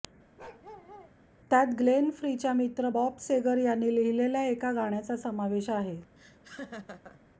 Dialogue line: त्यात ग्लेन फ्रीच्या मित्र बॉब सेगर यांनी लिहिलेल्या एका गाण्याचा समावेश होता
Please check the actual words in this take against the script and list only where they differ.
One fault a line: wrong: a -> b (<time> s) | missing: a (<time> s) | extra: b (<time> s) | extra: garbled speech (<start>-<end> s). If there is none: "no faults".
wrong: होता -> आहे (5.7 s)